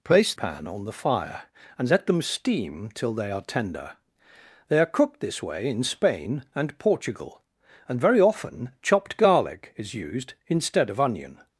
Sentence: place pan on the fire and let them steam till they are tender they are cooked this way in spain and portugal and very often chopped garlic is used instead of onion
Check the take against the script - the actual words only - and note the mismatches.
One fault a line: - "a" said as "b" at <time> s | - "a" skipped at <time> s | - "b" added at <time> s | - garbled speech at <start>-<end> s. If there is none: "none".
none